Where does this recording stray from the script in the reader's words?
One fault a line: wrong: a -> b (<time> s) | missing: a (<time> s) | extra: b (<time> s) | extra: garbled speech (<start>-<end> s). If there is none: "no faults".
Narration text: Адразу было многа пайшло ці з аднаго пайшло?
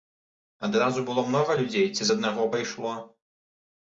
wrong: пайшло -> людзей (1.6 s)